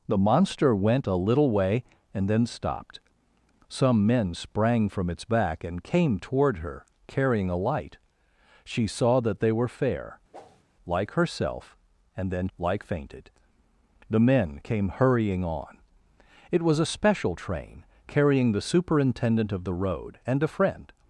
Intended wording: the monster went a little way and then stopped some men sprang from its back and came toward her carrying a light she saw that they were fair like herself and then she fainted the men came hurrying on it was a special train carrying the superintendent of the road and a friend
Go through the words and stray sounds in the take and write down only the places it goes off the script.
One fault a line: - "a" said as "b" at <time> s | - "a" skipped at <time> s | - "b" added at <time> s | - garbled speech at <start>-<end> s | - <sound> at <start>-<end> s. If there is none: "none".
- whoosh at 10.3-10.6 s
- "she" said as "like" at 12.6 s